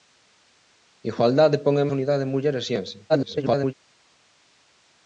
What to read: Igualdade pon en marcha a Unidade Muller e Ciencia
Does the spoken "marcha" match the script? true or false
false